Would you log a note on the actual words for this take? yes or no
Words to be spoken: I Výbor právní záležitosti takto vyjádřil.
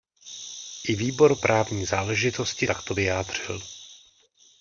no